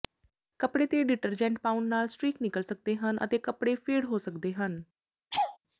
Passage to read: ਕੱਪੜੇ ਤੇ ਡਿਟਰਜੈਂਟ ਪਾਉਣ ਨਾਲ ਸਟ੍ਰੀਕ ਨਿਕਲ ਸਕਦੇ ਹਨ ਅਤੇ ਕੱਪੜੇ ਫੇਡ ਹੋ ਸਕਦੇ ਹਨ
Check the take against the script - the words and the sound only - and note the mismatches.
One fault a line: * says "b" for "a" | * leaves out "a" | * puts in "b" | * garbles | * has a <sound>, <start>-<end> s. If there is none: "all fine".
* has a laugh, 5.3-5.6 s